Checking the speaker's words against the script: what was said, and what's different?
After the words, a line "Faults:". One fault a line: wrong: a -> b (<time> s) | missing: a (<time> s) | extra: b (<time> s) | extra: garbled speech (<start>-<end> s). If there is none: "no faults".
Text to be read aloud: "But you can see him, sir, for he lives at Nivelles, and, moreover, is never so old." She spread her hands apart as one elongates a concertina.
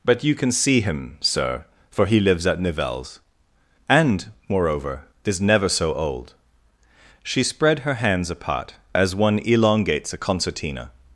"But you can see him, sir, for he lives at Nivelles, and, moreover, is never so old." She spread her hands apart as one elongates a concertina.
Faults:
no faults